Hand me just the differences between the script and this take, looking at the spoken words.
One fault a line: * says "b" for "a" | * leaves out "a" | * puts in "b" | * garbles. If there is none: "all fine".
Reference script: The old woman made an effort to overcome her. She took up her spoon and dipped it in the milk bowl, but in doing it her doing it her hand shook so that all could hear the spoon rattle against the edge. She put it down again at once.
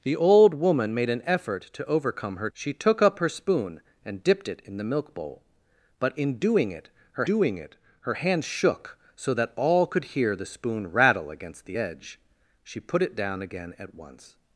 all fine